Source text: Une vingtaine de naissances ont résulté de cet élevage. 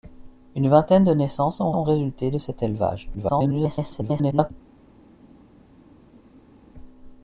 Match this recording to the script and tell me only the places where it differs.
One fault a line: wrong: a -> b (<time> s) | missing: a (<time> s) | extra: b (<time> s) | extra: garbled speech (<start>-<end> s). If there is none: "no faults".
extra: ont (1.7 s)
extra: garbled speech (3.1-4.5 s)